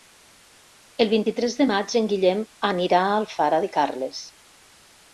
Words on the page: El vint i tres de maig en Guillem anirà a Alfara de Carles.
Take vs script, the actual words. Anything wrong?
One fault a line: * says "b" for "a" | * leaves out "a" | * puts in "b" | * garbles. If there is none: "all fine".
all fine